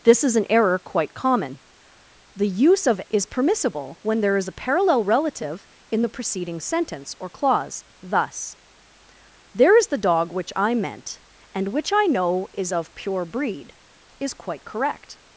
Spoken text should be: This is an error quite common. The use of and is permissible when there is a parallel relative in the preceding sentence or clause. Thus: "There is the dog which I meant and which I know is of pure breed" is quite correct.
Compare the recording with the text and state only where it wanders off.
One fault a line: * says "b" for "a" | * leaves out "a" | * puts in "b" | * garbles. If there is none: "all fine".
* leaves out "and"